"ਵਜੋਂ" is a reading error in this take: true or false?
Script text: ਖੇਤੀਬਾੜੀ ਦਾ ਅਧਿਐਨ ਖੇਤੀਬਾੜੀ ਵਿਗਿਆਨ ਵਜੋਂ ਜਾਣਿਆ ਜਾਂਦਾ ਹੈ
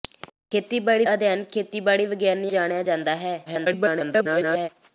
true